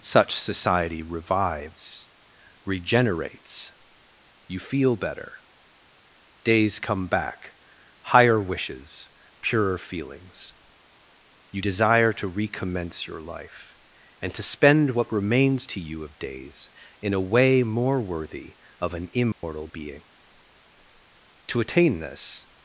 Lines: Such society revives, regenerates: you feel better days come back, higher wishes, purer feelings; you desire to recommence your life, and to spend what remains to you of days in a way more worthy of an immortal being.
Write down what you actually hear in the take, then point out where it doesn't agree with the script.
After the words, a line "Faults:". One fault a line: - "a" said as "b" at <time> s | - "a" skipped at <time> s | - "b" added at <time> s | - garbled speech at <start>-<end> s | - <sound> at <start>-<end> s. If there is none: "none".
Such society revives, regenerates: you feel better days come back, higher wishes, purer feelings; you desire to recommence your life, and to spend what remains to you of days in a way more worthy of an immortal being. To attain this
Faults:
- dropout at 19.3-19.4 s
- "To attain this" added at 21.5 s